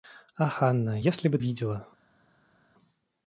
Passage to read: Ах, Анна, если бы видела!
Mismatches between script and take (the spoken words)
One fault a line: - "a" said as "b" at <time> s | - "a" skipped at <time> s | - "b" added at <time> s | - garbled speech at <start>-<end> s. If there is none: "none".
none